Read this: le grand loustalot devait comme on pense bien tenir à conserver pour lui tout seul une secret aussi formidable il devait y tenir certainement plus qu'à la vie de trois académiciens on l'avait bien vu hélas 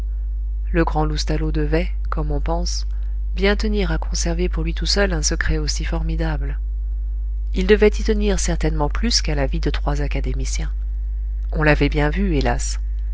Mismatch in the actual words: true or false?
true